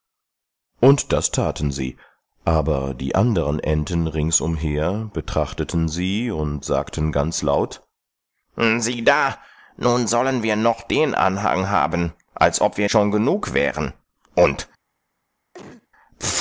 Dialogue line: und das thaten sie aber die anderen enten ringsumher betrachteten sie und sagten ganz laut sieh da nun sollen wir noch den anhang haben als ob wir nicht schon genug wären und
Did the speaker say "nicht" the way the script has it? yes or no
no